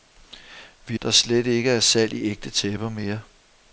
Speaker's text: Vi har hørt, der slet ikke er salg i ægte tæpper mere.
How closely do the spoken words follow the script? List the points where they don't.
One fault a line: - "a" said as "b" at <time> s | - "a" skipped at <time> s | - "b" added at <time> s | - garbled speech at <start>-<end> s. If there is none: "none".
- "har hørt" skipped at 1.0 s